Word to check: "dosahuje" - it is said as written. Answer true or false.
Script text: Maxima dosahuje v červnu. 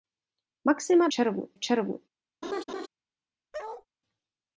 false